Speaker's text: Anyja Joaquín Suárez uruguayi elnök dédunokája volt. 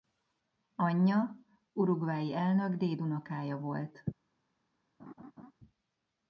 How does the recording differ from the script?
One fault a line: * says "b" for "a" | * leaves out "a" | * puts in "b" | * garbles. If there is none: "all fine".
* leaves out "Joaquín Suárez"